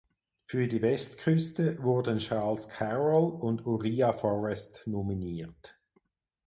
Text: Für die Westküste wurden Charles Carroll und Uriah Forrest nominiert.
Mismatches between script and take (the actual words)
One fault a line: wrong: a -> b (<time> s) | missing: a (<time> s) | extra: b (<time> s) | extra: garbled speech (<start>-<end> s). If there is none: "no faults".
no faults